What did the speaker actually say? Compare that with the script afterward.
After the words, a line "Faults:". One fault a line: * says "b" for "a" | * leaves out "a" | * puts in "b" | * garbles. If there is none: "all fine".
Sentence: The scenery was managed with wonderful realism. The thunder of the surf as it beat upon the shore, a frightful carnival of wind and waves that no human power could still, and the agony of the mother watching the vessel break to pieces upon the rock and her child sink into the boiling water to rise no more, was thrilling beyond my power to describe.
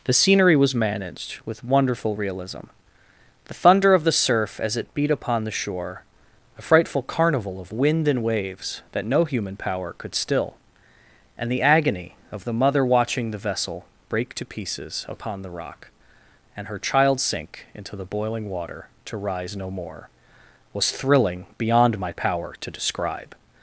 The scenery was managed with wonderful realism. The thunder of the surf as it beat upon the shore, a frightful carnival of wind and waves that no human power could still, and the agony of the mother watching the vessel break to pieces upon the rock and her child sink into the boiling water to rise no more, was thrilling beyond my power to describe.
Faults:
all fine